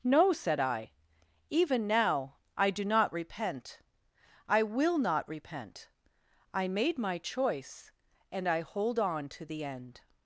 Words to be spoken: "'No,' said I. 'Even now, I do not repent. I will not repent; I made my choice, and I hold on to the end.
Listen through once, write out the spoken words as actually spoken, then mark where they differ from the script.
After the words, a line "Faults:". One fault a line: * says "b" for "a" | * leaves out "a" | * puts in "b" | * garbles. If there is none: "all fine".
"'No,' said I. 'Even now, I do not repent. I will not repent; I made my choice, and I hold on to the end.
Faults:
all fine